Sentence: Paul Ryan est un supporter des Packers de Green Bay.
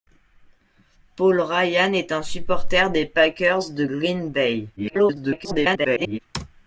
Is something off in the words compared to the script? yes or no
yes